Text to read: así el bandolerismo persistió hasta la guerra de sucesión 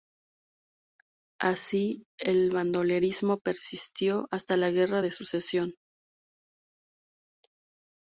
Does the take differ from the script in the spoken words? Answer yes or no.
no